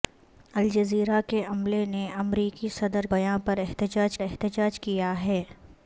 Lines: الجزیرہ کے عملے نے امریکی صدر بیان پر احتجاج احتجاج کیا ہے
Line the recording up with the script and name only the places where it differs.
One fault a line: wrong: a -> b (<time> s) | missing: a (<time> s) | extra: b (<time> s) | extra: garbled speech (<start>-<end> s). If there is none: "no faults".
no faults